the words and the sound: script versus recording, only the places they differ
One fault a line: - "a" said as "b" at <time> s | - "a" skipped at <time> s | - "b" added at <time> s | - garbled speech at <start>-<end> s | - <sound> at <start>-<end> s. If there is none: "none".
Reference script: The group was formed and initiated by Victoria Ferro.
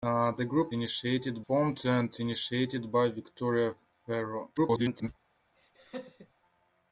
- "was" said as "initiated" at 0.7 s
- garbled speech at 4.6-5.1 s
- laugh at 5.5-6.3 s